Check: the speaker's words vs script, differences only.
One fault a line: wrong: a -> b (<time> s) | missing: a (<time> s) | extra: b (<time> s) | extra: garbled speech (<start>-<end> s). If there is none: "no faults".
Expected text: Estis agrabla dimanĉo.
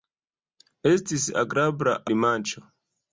no faults